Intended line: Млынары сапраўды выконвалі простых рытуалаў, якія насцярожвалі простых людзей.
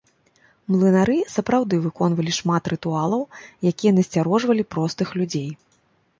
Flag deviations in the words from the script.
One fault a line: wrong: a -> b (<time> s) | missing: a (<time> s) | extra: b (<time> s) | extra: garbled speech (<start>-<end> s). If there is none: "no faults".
wrong: простых -> шмат (2.4 s)